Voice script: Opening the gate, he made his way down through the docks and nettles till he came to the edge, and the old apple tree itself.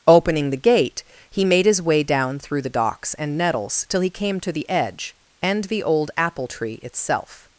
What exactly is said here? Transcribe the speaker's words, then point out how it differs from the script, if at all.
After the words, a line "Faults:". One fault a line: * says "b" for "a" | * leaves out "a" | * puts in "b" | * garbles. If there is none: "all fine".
Opening the gate, he made his way down through the docks and nettles till he came to the edge, and the old apple tree itself.
Faults:
all fine